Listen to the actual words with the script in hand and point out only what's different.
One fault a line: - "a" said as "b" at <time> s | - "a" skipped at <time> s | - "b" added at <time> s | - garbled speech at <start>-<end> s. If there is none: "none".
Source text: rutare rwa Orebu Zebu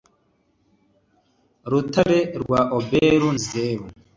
none